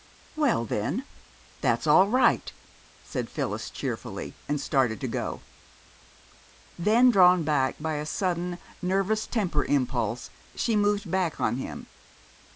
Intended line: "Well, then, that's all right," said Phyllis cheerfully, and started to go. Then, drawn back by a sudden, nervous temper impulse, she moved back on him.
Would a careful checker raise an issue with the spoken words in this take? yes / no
no